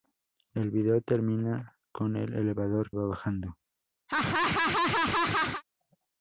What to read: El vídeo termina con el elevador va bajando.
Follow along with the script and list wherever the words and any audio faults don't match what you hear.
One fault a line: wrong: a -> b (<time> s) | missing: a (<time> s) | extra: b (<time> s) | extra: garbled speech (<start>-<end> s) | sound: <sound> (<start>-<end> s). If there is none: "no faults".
sound: laugh (4.1-5.6 s)